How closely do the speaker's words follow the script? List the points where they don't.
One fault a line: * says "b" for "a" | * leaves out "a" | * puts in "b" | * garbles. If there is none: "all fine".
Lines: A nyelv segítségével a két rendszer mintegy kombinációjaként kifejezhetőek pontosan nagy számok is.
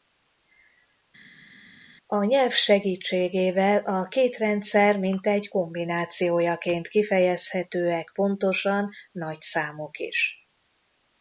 all fine